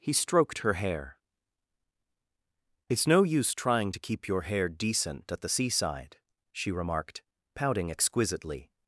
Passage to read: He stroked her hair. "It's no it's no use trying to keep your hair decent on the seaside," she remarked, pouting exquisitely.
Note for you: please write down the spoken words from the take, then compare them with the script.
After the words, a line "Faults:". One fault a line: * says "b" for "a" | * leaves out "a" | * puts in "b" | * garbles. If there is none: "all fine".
He stroked her hair. "It's no use trying to keep your hair decent at the seaside," she remarked, pouting exquisitely.
Faults:
* leaves out "it's no"
* says "at" for "on"